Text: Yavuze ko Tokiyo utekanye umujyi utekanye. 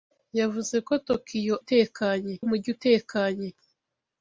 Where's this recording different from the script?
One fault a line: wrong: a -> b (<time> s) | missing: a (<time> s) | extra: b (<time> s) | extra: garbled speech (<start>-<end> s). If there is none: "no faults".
no faults